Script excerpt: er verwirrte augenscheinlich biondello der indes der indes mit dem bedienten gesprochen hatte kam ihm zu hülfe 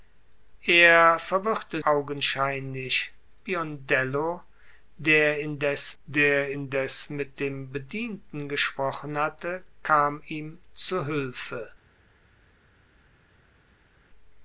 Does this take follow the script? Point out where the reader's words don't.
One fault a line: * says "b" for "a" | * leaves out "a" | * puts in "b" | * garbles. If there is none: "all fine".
all fine